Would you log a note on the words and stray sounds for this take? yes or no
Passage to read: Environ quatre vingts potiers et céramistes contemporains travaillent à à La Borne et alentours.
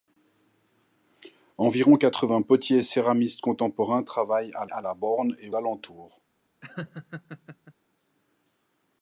yes